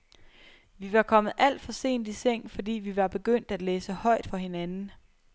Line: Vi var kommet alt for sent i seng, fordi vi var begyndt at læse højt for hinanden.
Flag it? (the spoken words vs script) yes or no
no